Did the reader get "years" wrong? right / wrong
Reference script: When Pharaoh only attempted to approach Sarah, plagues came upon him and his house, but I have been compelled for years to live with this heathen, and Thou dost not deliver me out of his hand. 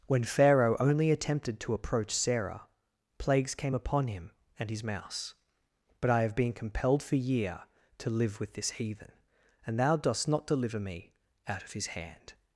wrong